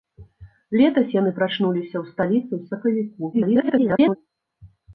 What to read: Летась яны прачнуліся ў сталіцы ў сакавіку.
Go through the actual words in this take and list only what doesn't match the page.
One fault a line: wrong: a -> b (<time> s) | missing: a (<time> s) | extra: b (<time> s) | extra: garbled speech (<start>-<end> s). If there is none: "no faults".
extra: garbled speech (3.3-4.2 s)